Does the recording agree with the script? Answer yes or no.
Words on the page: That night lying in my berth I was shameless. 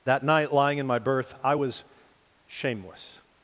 yes